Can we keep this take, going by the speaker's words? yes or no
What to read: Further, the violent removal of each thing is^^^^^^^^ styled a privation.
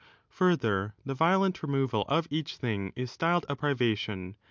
yes